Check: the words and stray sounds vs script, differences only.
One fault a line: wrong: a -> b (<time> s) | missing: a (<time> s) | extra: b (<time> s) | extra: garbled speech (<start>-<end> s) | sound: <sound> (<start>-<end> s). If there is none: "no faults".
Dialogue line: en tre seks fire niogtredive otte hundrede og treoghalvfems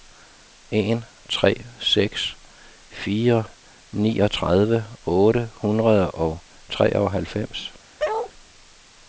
sound: bark (8.0-8.3 s)